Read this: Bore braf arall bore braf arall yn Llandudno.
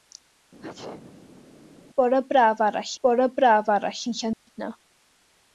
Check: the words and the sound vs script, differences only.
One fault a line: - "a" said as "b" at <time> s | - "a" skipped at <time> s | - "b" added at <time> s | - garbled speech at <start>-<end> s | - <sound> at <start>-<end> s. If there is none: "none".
- sneeze at 0.6-1.5 s
- dropout at 4.3-4.5 s